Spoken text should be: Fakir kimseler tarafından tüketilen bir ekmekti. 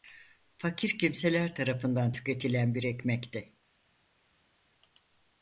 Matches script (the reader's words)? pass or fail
pass